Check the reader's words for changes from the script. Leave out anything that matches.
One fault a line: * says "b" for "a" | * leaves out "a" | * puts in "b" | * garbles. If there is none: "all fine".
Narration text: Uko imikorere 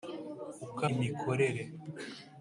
all fine